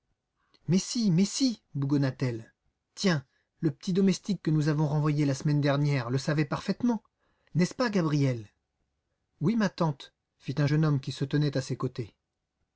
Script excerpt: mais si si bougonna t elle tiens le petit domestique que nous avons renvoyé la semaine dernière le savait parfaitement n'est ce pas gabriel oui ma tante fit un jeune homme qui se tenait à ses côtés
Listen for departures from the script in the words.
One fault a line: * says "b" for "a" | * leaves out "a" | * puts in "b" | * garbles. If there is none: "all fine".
* puts in "mais"